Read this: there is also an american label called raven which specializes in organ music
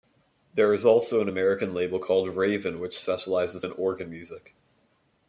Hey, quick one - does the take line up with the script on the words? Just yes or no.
yes